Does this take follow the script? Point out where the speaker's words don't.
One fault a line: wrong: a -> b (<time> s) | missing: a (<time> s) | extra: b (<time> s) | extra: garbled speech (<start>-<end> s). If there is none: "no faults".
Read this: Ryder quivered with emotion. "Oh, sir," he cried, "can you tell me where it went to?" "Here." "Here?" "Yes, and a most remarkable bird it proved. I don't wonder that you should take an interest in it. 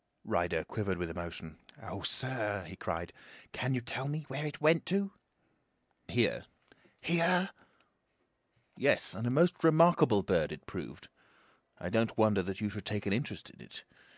no faults